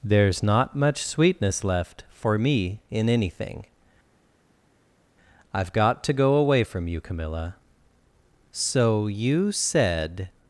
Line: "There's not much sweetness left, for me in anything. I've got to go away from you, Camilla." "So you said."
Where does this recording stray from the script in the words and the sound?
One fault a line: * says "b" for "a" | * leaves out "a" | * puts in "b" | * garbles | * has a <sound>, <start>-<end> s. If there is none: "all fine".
all fine